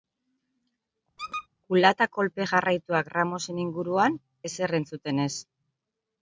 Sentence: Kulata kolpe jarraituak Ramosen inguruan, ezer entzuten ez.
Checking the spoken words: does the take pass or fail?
pass